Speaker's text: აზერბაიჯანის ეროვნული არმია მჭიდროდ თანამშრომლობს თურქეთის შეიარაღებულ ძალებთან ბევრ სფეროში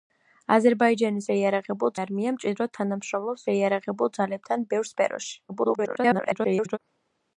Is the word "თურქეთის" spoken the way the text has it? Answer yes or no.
no